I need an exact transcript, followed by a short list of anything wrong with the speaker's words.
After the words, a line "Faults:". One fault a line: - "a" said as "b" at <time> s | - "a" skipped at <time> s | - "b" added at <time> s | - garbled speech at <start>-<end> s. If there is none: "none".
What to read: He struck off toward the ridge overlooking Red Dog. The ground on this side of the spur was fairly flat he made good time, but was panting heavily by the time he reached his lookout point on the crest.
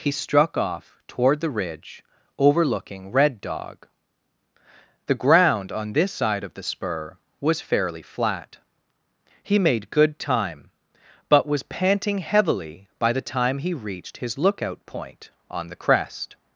He struck off toward the ridge overlooking Red Dog. The ground on this side of the spur was fairly flat he made good time, but was panting heavily by the time he reached his lookout point on the crest.
Faults:
none